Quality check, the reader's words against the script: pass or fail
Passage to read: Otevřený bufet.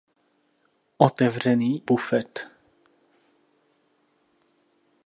pass